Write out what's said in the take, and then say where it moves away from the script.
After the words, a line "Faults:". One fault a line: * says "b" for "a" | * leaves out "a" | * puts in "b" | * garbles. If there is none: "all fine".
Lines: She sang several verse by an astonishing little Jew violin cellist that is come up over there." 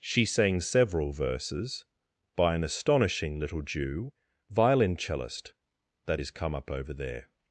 She sang several verses by an astonishing little Jew violin cellist that is come up over there."
Faults:
* says "verses" for "verse"